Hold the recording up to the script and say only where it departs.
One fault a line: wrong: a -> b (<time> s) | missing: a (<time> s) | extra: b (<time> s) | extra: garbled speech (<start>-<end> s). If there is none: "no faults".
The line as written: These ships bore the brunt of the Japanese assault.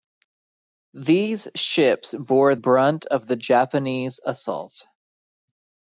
missing: the (2.5 s)